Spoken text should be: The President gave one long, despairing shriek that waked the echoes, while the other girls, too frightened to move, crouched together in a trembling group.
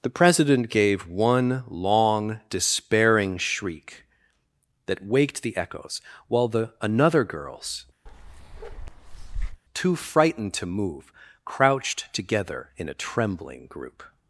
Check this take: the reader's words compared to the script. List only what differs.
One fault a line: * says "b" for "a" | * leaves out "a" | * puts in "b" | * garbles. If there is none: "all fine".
* says "another" for "other"